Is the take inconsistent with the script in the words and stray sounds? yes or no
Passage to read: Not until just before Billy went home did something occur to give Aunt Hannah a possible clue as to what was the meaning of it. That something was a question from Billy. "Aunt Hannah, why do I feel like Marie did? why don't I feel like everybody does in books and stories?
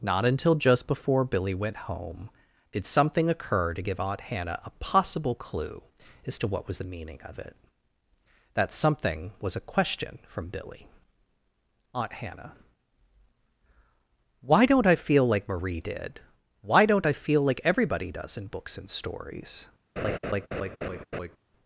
yes